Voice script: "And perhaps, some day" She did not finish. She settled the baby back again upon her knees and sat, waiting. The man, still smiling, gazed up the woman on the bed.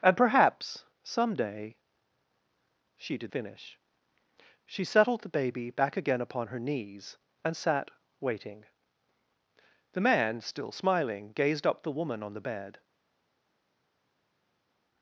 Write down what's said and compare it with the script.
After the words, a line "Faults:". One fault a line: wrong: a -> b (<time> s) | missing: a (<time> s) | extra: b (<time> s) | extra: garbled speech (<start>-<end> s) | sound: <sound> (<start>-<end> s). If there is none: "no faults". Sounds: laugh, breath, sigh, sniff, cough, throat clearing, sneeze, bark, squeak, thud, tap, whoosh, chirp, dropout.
"And perhaps, some day" She did finish. She settled the baby back again upon her knees and sat, waiting. The man, still smiling, gazed up the woman on the bed.
Faults:
missing: not (3.3 s)